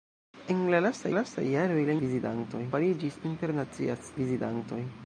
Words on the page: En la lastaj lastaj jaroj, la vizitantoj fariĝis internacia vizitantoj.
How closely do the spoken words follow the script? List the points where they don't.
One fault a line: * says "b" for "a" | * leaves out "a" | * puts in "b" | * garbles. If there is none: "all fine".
all fine